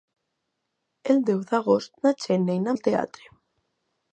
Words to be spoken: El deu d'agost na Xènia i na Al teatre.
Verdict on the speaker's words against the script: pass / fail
pass